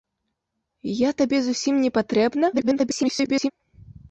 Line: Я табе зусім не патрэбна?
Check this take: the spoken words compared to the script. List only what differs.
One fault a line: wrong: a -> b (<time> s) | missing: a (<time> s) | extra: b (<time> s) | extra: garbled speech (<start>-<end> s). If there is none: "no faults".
extra: garbled speech (2.5-3.5 s)